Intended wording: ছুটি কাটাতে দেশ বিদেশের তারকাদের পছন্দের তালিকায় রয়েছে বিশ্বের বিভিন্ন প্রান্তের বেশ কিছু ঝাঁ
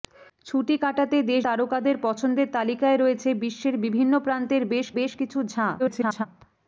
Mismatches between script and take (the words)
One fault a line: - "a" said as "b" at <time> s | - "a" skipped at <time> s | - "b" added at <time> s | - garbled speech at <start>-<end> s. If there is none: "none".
- "বিদেশের" skipped at 1.4 s
- "বেশ" added at 5.0 s
- garbled speech at 5.8-6.3 s